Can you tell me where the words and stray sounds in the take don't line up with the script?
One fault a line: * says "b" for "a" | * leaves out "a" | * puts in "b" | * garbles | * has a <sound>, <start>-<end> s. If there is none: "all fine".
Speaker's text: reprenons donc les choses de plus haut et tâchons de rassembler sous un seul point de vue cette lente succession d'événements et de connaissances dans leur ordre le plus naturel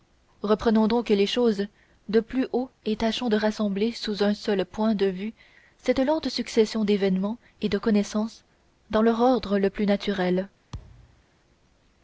* has a thud, 10.7-11.2 s